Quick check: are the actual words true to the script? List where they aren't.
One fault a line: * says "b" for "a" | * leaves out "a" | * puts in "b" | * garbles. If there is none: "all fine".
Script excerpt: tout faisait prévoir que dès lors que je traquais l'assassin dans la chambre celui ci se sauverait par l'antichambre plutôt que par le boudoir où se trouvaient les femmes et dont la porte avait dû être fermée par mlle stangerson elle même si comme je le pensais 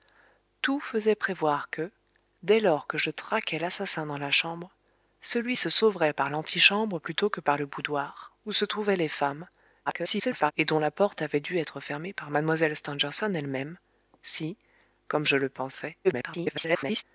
* leaves out "ci"
* garbles
* garbles